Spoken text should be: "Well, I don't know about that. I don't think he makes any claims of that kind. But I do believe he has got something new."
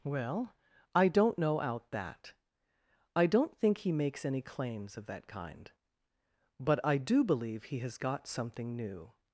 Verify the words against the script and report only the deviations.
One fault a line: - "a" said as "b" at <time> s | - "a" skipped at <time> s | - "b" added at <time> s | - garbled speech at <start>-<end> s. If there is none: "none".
- "about" said as "out" at 1.6 s